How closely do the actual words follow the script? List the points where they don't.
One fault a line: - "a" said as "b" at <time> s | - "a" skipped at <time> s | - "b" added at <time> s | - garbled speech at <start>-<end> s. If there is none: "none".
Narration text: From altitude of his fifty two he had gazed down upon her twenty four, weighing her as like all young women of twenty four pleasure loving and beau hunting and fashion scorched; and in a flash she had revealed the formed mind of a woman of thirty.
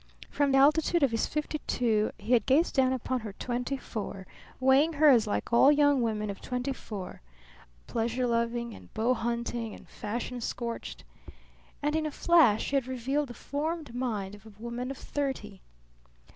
none